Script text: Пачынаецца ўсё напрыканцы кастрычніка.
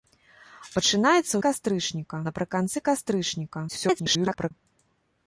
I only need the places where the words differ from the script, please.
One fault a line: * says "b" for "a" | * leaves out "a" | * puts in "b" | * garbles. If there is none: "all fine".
* says "кастрычніка" for "ўсё"
* garbles